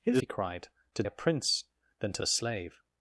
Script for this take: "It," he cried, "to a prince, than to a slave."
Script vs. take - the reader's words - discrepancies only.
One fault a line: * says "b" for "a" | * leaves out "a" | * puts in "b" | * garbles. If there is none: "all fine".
all fine